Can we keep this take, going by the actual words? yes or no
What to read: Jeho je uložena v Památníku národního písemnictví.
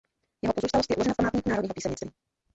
no